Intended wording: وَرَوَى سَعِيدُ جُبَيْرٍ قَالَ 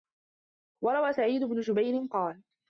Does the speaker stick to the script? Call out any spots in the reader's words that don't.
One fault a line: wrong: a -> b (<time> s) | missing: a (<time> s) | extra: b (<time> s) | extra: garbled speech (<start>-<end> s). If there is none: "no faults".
extra: بْنُ (1.4 s)